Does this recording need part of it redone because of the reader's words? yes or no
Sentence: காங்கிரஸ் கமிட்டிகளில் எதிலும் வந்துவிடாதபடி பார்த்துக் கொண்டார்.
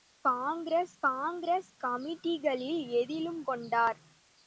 yes